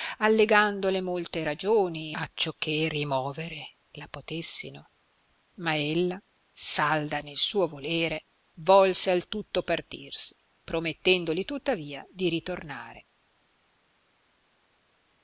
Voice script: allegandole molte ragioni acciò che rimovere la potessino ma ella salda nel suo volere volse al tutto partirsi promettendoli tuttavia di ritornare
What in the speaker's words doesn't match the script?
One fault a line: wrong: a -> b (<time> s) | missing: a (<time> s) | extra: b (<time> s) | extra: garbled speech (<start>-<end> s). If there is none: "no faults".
no faults